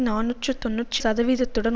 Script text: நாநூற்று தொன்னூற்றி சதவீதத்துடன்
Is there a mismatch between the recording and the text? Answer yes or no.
no